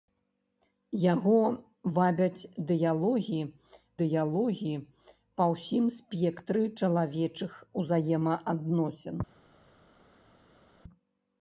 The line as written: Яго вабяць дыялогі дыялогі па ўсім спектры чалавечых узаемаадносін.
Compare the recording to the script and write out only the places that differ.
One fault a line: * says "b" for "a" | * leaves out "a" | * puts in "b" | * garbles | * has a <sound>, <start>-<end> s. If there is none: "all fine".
all fine